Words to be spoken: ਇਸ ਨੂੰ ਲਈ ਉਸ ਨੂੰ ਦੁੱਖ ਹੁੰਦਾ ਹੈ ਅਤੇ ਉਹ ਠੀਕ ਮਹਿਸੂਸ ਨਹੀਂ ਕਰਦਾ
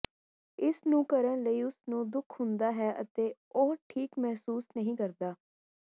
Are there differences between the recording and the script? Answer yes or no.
yes